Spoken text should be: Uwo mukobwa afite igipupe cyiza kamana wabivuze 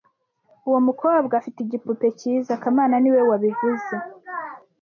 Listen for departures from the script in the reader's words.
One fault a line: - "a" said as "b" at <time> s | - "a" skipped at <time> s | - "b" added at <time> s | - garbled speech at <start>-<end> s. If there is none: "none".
- "niwe" added at 3.0 s